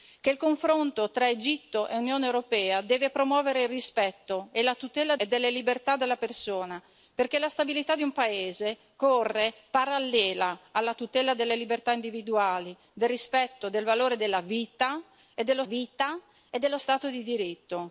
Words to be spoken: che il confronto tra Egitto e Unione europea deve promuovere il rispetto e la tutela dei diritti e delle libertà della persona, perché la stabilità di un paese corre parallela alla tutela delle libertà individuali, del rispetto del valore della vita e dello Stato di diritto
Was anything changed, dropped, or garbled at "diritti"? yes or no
yes